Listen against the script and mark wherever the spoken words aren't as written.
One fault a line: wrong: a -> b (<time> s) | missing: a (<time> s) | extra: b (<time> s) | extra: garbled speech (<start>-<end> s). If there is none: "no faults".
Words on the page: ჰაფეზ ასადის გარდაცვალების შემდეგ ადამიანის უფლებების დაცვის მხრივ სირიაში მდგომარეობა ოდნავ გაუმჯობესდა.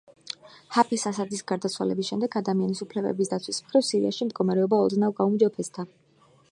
no faults